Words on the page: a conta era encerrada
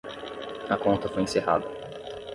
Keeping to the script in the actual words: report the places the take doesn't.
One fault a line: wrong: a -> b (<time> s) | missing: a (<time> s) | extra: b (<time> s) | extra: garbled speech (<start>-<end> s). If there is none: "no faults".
wrong: era -> foi (1.1 s)